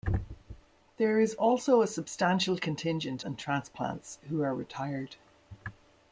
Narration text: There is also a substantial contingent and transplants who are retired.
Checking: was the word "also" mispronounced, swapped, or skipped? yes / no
no